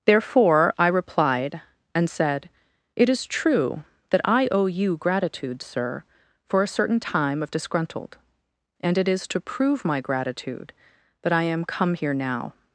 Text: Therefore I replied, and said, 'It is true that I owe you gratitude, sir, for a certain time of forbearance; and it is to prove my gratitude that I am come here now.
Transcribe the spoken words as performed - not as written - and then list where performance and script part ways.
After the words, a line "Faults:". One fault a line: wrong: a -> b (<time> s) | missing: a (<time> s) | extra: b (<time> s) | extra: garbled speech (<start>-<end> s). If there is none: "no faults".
Therefore I replied, and said, 'It is true that I owe you gratitude, sir, for a certain time of disgruntled; and it is to prove my gratitude that I am come here now.
Faults:
wrong: forbearance -> disgruntled (7.5 s)